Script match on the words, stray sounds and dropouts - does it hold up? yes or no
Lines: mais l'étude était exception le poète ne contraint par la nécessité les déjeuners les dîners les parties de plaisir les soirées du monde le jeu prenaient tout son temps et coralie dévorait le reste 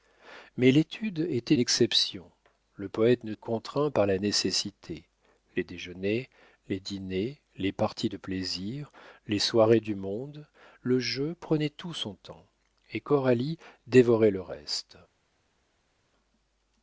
yes